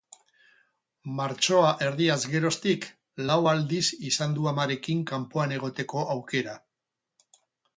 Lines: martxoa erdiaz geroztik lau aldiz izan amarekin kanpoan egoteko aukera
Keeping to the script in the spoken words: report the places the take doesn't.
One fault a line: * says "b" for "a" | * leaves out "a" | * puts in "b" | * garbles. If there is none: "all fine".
* puts in "du"